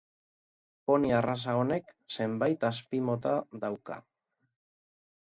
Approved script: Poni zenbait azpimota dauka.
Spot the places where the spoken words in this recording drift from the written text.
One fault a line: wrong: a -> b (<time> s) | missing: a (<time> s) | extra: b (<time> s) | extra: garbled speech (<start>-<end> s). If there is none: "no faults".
extra: arraza honek (1.2 s)